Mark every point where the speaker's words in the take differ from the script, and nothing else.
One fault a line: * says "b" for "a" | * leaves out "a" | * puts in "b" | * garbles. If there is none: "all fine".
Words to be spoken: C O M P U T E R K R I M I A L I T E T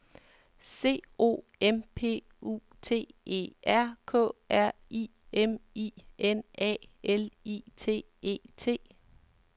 * puts in "N"